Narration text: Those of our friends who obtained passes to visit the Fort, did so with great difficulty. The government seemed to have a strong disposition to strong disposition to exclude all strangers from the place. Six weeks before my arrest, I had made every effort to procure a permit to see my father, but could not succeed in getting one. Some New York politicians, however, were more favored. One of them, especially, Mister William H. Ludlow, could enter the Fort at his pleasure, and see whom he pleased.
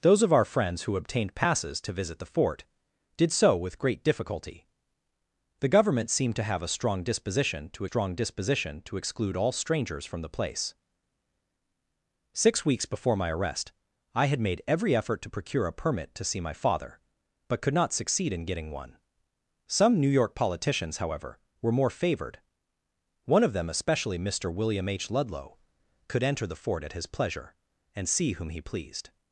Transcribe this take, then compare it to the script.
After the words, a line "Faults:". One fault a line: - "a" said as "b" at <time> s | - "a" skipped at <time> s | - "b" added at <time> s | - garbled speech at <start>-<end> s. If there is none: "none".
Those of our friends who obtained passes to visit the Fort, did so with great difficulty. The government seemed to have a strong disposition to strong disposition to exclude all strangers from the place. Six weeks before my arrest, I had made every effort to procure a permit to see my father, but could not succeed in getting one. Some New York politicians, however, were more favored. One of them, especially, Mister William H. Ludlow, could enter the Fort at his pleasure, and see whom he pleased.
Faults:
none